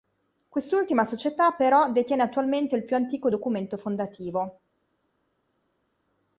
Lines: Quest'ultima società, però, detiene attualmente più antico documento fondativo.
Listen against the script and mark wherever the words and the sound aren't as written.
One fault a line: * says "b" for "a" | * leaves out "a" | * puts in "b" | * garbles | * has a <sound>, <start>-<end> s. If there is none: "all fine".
* puts in "il"